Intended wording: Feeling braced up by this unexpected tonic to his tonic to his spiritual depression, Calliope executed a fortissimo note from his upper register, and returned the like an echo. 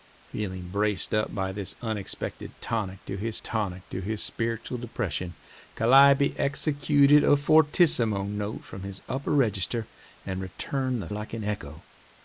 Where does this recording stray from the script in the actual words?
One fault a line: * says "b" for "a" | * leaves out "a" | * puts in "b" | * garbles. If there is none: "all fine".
all fine